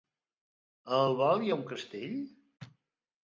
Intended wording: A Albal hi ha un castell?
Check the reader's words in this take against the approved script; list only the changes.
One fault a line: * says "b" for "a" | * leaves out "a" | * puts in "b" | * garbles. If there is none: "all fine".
all fine